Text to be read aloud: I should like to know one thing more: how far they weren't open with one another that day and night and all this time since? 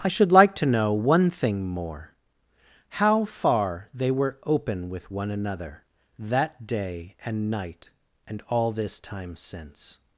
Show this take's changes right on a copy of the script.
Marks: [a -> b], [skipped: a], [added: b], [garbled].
I should like to know one thing more: how far they [weren't -> were] open with one another that day and night and all this time since?